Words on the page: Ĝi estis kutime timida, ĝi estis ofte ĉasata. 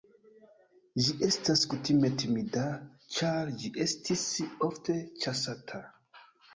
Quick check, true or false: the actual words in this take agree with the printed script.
false